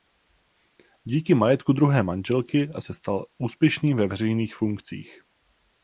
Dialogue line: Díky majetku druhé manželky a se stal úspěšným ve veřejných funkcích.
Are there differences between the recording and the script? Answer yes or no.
no